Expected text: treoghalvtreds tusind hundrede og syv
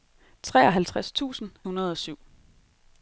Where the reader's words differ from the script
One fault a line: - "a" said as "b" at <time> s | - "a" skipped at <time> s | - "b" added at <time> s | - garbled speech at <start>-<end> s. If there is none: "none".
none